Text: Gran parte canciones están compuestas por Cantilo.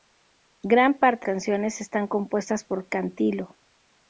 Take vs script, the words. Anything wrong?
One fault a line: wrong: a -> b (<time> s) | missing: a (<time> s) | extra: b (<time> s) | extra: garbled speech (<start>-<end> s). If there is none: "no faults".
no faults